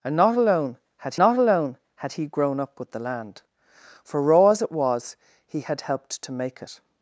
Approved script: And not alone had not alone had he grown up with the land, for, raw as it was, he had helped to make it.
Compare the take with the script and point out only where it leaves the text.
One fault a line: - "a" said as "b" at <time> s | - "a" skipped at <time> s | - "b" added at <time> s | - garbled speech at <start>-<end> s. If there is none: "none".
none